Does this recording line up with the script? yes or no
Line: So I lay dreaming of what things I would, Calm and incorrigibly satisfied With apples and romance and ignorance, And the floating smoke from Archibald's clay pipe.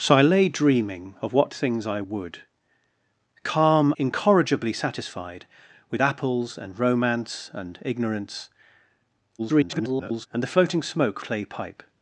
no